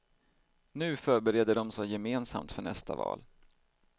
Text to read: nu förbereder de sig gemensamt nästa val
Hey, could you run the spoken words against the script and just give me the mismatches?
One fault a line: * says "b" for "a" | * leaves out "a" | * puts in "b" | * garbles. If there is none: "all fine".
* puts in "för"